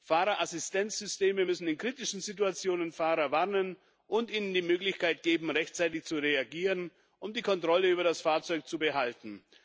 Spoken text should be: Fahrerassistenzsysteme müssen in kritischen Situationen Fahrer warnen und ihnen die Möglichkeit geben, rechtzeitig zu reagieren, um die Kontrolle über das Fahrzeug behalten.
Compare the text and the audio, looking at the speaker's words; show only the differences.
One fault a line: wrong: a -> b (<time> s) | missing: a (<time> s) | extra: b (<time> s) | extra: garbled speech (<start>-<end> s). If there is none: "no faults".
extra: zu (8.7 s)